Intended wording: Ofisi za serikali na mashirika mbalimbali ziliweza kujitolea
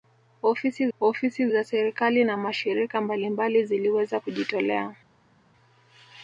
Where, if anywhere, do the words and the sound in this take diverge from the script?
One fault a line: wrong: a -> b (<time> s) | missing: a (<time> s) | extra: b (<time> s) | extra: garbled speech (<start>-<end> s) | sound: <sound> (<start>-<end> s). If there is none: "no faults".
extra: ofisi (1.0 s)